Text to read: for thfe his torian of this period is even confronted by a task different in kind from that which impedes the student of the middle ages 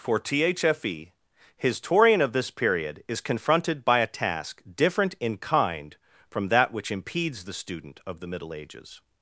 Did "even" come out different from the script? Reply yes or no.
yes